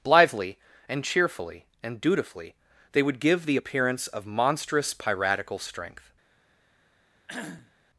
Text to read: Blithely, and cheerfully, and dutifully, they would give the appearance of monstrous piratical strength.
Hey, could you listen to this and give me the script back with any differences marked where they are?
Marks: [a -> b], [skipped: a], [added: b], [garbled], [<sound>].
Blithely, and cheerfully, and dutifully, they would give the appearance of monstrous piratical strength. [cough]